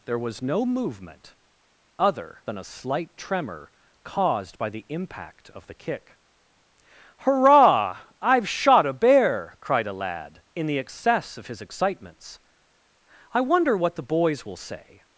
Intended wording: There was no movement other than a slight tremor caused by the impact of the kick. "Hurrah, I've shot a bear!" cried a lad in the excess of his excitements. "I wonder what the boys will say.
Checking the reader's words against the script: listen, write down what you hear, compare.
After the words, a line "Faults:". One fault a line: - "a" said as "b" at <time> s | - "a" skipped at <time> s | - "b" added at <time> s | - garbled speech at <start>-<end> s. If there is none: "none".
There was no movement other than a slight tremor caused by the impact of the kick. "Hurrah, I've shot a bear!" cried a lad in the excess of his excitements. "I wonder what the boys will say.
Faults:
none